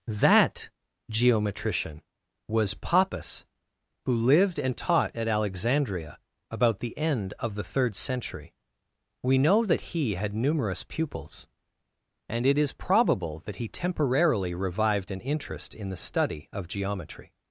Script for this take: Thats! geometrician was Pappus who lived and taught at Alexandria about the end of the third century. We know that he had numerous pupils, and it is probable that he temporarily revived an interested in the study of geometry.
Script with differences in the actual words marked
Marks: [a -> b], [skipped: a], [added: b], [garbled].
[Thats! -> That] geometrician was Pappus who lived and taught at Alexandria about the end of the third century. We know that he had numerous pupils, and it is probable that he temporarily revived an [interested -> interest] in the study of geometry.